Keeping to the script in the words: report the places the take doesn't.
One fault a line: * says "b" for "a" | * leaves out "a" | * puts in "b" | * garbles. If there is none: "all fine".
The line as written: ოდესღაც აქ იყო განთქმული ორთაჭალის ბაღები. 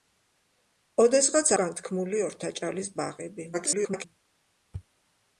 * leaves out "აქ იყო"
* garbles